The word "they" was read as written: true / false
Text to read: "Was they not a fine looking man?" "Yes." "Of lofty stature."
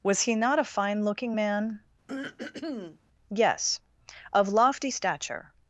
false